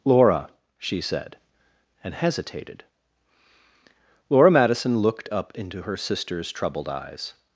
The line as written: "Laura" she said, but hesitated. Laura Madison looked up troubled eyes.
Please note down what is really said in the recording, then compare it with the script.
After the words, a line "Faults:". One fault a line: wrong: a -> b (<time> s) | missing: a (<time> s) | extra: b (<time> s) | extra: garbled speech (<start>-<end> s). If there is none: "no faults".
"Laura" she said, and hesitated. Laura Madison looked up into her sister's troubled eyes.
Faults:
wrong: but -> and (2.0 s)
extra: into her sister's (5.5 s)